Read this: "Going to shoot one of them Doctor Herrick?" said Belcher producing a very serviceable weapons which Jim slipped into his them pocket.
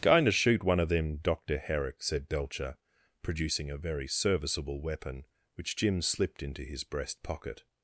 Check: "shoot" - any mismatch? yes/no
no